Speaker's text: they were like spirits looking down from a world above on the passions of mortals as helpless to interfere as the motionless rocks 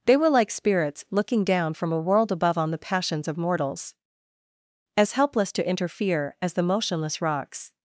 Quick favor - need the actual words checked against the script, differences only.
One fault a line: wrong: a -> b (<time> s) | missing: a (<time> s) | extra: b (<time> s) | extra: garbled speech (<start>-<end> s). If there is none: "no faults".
no faults